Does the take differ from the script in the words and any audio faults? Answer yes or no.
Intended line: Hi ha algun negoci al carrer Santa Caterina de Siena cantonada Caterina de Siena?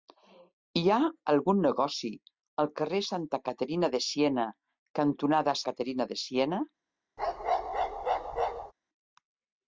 yes